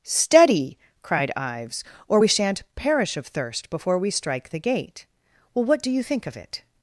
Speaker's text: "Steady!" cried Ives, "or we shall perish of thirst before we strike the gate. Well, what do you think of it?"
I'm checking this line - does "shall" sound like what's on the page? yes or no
no